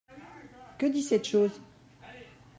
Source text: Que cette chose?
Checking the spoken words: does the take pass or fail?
fail